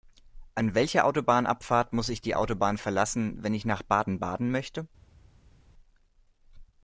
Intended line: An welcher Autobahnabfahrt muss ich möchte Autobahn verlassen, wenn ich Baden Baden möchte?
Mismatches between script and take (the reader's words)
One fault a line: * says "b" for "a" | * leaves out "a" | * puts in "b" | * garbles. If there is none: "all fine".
* says "die" for "möchte"
* puts in "nach"